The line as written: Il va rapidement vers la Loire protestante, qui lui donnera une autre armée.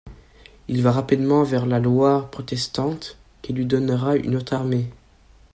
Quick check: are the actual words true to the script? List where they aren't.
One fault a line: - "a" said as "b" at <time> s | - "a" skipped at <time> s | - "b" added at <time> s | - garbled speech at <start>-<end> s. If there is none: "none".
none